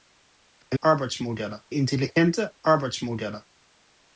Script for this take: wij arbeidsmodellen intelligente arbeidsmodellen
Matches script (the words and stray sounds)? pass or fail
pass